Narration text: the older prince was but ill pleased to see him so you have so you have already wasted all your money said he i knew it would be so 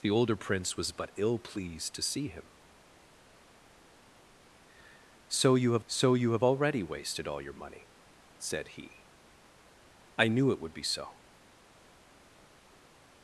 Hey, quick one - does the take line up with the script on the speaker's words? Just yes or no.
yes